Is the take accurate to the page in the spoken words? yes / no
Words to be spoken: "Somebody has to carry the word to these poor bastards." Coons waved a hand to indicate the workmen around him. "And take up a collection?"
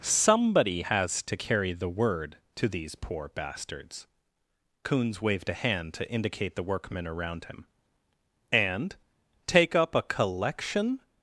yes